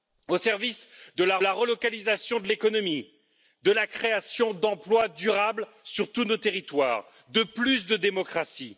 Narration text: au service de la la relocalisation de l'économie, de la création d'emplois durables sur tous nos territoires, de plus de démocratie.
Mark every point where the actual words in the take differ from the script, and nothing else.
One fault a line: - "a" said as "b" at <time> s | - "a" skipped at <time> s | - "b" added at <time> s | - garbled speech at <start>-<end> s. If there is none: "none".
none